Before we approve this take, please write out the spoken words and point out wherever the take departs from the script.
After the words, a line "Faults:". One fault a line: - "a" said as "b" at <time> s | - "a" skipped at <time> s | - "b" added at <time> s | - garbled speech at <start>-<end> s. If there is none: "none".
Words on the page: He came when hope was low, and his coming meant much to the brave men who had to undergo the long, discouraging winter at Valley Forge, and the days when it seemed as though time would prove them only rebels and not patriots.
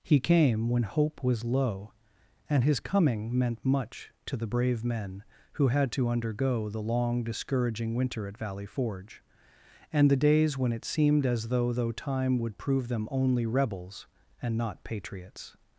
He came when hope was low, and his coming meant much to the brave men who had to undergo the long, discouraging winter at Valley Forge, and the days when it seemed as though though time would prove them only rebels and not patriots.
Faults:
- "though" added at 11.7 s